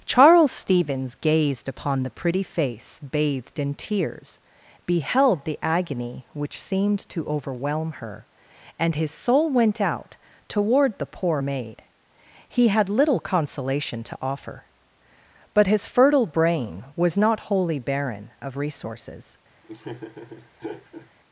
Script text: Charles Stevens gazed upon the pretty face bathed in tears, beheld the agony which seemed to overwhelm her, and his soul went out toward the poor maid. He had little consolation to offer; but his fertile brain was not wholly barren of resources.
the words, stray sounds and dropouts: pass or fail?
fail